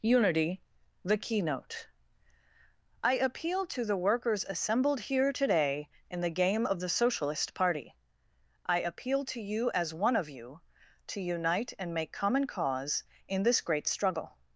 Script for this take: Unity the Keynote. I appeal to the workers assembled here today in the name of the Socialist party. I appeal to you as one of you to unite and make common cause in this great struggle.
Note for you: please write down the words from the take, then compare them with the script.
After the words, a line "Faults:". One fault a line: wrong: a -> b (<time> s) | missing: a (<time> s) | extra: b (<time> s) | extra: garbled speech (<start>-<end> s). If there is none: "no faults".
Unity the Keynote. I appeal to the workers assembled here today in the game of the Socialist party. I appeal to you as one of you to unite and make common cause in this great struggle.
Faults:
wrong: name -> game (6.3 s)